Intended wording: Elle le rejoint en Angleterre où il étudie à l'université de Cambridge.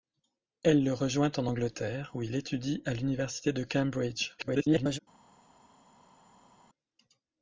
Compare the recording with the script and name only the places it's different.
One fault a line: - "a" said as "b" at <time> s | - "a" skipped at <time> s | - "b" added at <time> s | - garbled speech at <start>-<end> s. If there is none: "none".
- garbled speech at 4.4-5.0 s